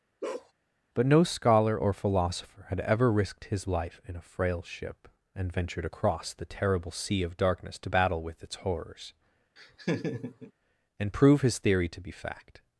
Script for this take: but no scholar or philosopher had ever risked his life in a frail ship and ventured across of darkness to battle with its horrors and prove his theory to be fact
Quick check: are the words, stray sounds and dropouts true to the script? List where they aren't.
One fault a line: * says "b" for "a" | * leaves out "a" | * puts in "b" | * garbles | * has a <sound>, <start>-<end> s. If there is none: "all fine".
* has a bark, 0.2-0.5 s
* puts in "the terrible sea"
* has a laugh, 9.6-10.5 s